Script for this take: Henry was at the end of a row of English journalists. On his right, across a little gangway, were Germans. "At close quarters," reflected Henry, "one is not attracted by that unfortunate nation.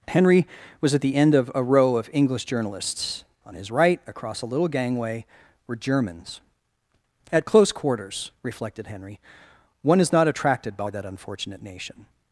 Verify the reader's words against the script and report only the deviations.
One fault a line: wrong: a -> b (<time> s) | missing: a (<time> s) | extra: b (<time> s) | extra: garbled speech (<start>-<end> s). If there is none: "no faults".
no faults